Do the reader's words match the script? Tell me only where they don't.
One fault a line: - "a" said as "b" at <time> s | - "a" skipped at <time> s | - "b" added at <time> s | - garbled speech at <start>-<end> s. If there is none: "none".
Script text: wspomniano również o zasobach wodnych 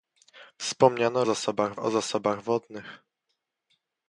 - "również" said as "zasobach" at 1.2 s